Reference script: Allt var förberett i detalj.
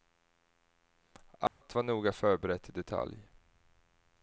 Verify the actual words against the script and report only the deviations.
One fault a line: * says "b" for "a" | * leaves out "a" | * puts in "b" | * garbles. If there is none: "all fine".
* puts in "noga"